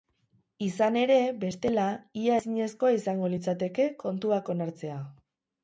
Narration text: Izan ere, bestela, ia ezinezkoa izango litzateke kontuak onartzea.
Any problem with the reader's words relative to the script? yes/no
no